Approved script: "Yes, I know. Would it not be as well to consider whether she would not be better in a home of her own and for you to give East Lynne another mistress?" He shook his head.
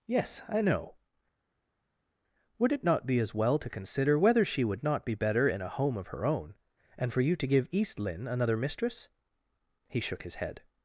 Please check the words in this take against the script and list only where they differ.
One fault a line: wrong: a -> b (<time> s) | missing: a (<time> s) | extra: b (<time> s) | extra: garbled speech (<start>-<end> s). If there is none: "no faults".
no faults